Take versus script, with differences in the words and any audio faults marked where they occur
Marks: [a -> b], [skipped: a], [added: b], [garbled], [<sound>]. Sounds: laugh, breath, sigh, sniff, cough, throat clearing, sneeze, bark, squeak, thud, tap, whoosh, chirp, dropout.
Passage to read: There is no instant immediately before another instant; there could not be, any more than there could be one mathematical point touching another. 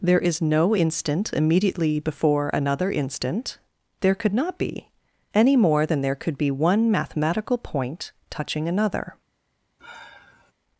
There is no instant immediately before another instant; there could not be, any more than there could be one mathematical point touching another. [sigh]